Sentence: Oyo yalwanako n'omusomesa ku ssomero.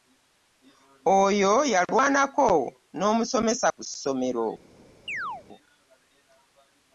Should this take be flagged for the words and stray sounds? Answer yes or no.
yes